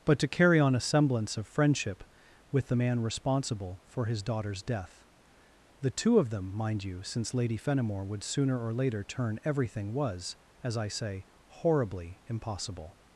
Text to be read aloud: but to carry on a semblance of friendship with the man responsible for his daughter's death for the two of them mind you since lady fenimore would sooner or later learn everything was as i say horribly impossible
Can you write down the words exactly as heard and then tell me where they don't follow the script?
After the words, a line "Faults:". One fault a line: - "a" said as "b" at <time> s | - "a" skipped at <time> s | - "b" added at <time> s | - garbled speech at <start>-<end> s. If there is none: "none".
but to carry on a semblance of friendship with the man responsible for his daughter's death the two of them mind you since lady fenimore would sooner or later turn everything was as i say horribly impossible
Faults:
- "for" skipped at 5.1 s
- "learn" said as "turn" at 9.0 s